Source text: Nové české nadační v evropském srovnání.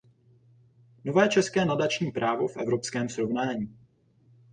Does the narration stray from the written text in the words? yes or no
yes